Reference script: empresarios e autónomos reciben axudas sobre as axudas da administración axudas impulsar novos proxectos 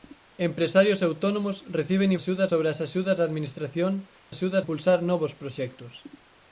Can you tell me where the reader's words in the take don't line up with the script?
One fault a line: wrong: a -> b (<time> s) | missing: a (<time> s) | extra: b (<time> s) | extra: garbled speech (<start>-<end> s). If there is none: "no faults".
no faults